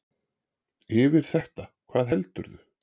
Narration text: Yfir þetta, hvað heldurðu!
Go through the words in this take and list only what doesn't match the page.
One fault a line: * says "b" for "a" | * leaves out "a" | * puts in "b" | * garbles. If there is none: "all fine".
all fine